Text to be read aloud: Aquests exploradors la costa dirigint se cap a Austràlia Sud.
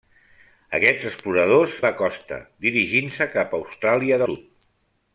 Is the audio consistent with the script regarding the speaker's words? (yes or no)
yes